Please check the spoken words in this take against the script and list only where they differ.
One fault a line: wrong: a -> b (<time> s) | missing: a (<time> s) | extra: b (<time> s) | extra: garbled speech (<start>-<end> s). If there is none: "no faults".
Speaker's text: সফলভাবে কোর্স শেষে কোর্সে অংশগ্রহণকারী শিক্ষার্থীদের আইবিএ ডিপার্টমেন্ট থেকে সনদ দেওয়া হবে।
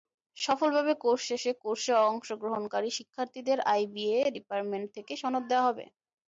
no faults